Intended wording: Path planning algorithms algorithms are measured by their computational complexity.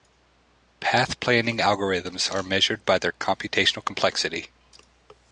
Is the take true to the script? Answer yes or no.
no